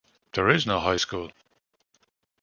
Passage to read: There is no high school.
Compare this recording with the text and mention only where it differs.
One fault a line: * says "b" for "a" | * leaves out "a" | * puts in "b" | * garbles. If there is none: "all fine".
all fine